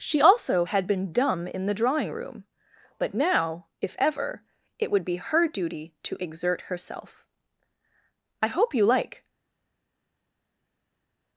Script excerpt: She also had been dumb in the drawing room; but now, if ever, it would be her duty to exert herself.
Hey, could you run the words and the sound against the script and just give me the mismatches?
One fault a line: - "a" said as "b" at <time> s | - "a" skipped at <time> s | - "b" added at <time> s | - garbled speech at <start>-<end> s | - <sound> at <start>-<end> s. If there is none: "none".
- "I hope you like" added at 8.4 s